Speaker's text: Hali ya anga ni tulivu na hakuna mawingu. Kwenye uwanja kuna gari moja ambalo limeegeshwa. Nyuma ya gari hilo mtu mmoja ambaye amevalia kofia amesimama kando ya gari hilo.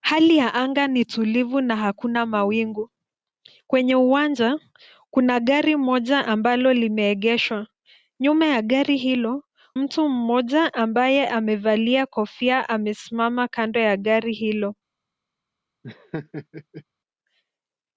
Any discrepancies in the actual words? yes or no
no